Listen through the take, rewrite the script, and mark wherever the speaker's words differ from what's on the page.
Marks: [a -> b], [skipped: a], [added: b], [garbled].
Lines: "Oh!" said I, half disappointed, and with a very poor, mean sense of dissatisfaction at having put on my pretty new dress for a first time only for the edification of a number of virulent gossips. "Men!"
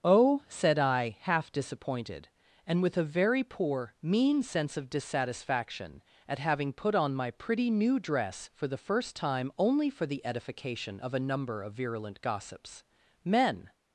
"Oh!" said I, half disappointed, and with a very poor, mean sense of dissatisfaction at having put on my pretty new dress for [a -> the] first time only for the edification of a number of virulent gossips. "Men!"